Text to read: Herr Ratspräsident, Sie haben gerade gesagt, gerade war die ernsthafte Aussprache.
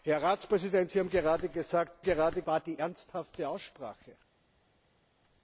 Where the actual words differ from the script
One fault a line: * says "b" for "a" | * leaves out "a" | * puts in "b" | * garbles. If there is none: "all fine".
all fine